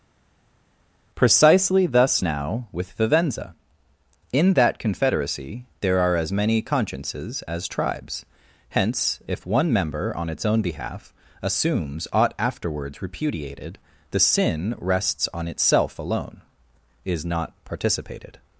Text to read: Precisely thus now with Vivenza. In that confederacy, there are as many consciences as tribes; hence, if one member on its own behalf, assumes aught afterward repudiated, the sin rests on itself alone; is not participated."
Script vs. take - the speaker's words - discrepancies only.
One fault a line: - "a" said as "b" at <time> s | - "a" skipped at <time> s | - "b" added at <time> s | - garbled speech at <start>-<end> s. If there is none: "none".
- "afterward" said as "afterwards" at 12.4 s